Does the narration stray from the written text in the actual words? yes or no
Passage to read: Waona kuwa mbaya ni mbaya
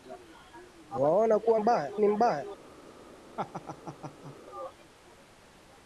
no